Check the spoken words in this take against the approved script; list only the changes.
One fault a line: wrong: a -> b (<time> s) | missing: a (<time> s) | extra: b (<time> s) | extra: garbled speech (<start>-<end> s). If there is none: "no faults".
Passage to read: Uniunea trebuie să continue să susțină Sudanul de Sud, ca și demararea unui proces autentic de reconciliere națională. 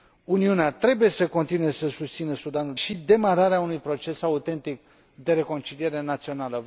missing: de Sud ca (2.8 s)